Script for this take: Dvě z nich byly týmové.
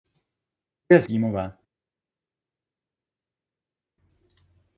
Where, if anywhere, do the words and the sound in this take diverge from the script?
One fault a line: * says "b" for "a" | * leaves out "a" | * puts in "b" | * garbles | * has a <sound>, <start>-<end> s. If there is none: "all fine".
* leaves out "nich byly"